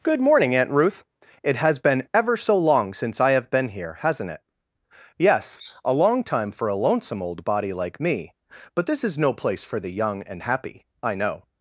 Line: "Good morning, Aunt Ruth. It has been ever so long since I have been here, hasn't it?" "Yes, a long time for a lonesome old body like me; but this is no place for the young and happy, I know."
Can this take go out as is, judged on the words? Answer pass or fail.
pass